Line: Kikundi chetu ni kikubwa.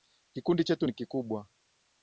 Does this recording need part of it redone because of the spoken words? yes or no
no